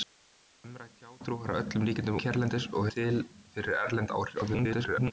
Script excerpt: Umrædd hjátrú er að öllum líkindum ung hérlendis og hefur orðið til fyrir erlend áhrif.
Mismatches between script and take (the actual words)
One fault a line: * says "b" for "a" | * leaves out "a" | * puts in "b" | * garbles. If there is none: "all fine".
* leaves out "ung"
* leaves out "hefur orðið"
* garbles